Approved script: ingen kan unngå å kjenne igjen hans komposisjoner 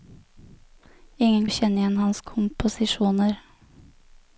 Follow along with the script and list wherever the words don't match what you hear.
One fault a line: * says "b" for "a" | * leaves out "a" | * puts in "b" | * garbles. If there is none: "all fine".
* leaves out "kan unngå"